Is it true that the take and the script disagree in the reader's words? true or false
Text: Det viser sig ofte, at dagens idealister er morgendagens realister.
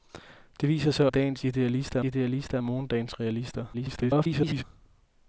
true